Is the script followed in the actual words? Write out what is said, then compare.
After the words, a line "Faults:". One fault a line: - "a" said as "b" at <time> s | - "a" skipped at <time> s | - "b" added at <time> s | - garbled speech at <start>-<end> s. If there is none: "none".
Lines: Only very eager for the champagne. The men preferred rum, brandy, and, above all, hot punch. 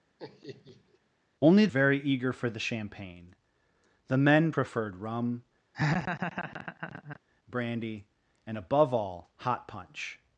Only very eager for the champagne. The men preferred rum, brandy, and, above all, hot punch.
Faults:
none